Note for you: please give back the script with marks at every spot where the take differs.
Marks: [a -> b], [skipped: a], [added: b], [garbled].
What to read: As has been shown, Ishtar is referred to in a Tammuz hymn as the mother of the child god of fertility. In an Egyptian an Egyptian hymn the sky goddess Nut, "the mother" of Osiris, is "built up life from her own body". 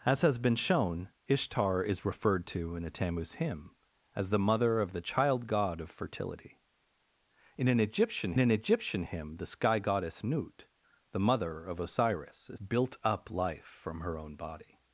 As has been shown, Ishtar is referred to in a Tammuz hymn as the mother of the child god of fertility. In an Egyptian an Egyptian hymn the sky goddess Nut, "the mother" of Osiris, is "built up life from her own body".